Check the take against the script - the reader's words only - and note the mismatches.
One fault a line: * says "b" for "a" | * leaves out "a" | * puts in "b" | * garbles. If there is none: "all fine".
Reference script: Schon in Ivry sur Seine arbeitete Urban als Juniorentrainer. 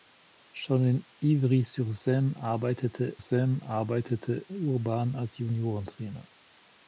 * puts in "Seine arbeitete"